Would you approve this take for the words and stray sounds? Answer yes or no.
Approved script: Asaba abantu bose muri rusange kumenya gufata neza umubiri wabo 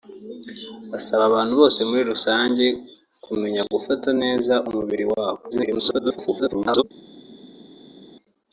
no